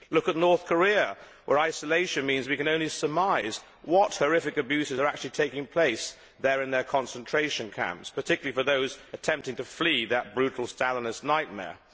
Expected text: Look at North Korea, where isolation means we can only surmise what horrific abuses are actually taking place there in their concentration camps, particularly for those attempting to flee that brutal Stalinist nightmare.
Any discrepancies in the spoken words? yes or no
no